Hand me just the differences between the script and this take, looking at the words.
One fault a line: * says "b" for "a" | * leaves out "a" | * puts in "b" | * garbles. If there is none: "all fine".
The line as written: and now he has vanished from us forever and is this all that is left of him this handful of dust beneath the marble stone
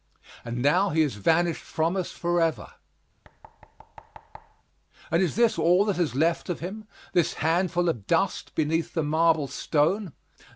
all fine